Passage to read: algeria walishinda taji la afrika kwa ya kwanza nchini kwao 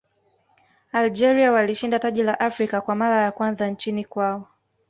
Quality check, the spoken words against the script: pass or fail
fail